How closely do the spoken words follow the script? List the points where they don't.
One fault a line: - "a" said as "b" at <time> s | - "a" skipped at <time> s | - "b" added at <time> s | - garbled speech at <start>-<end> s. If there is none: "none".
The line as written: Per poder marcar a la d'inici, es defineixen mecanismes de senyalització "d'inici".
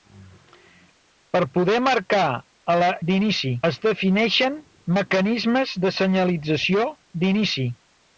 none